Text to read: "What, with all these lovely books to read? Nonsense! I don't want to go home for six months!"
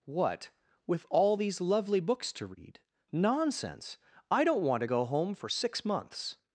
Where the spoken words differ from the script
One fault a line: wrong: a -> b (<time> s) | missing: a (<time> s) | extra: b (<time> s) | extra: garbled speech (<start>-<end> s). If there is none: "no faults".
no faults